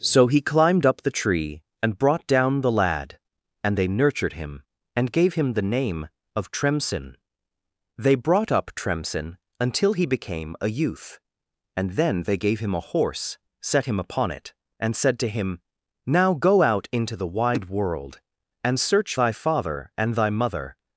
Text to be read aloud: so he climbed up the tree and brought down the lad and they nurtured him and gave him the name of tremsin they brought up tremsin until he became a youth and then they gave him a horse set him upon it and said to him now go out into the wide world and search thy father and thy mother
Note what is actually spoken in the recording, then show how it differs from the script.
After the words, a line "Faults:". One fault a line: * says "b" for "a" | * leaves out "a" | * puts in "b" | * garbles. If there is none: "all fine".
so he climbed up the tree and brought down the lad and they nurtured him and gave him the name of tremsin they brought up tremsin until he became a youth and then they gave him a horse set him upon it and said to him now go out into the wide world and search thy father and thy mother
Faults:
all fine